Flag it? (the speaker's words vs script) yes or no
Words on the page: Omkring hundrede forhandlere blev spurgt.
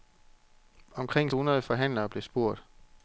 no